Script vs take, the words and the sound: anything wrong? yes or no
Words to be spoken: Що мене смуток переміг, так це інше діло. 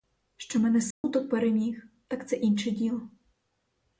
yes